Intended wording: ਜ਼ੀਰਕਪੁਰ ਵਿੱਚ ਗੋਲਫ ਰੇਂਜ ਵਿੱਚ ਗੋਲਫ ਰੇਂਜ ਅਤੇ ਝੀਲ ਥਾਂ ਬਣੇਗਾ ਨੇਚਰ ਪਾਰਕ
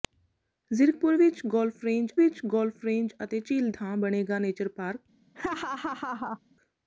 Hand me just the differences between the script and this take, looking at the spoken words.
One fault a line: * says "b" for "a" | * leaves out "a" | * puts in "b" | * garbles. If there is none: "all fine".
all fine